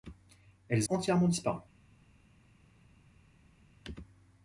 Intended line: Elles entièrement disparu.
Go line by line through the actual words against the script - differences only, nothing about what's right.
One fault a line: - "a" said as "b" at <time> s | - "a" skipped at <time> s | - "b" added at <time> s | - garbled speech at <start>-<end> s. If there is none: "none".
none